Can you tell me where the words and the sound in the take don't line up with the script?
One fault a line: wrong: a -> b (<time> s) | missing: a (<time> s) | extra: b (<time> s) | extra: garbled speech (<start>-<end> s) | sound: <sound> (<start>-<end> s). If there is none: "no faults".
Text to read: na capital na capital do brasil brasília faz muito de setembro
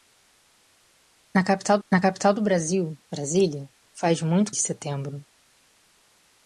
no faults